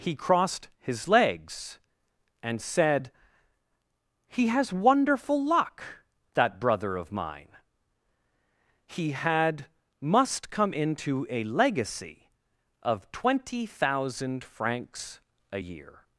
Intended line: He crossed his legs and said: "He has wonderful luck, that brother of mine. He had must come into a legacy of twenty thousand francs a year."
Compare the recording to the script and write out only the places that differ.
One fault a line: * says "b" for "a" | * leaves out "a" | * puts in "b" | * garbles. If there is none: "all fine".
all fine